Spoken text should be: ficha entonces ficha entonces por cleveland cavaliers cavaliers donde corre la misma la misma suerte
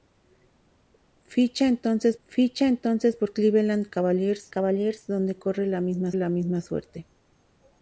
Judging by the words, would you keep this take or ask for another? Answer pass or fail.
pass